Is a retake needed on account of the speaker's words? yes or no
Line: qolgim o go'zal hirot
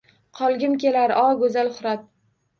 yes